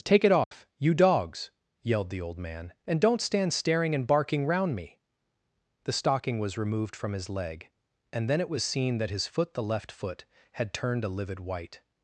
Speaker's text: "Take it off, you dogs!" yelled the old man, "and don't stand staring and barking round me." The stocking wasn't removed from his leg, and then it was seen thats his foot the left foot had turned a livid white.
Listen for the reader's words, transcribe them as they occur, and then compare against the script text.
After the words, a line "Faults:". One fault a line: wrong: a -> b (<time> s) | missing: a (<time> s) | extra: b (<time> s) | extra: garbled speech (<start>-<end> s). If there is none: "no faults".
"Take it off, you dogs!" yelled the old man, "and don't stand staring and barking round me." The stocking was removed from his leg, and then it was seen that his foot the left foot had turned a livid white.
Faults:
wrong: wasn't -> was (6.4 s)
wrong: thats -> that (9.0 s)